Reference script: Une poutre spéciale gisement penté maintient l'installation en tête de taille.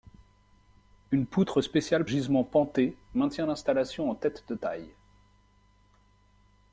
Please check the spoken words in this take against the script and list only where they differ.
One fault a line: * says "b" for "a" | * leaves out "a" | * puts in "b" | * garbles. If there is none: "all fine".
all fine